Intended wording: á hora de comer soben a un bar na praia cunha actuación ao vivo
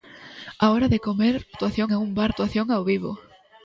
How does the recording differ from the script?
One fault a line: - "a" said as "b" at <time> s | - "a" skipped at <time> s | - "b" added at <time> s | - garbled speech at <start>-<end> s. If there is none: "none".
- "soben" said as "actuación" at 1.5 s
- "na praia cunha" skipped at 2.3 s